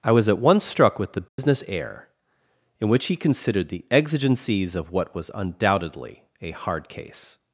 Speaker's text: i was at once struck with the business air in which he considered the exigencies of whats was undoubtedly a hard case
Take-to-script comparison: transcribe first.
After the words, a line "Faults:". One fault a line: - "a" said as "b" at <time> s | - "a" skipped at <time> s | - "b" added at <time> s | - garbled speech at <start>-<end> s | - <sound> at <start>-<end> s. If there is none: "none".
i was at once struck with the business air in which he considered the exigencies of what was undoubtedly a hard case
Faults:
- dropout at 1.3-1.4 s
- "whats" said as "what" at 4.9 s